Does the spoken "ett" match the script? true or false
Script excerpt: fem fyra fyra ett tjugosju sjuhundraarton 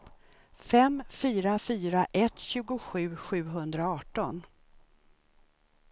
true